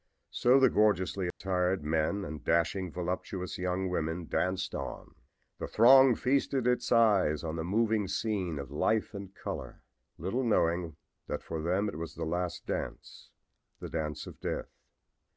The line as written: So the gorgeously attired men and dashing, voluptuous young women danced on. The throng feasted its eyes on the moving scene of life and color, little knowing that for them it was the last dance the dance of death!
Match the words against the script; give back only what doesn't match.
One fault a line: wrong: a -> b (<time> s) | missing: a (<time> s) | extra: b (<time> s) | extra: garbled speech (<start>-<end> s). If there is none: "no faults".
no faults